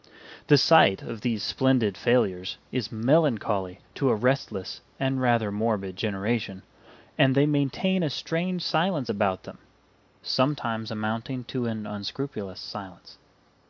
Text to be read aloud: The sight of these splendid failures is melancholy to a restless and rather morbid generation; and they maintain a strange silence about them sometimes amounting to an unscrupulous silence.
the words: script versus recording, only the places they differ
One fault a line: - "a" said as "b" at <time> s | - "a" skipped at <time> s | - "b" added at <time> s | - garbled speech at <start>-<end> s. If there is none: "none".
none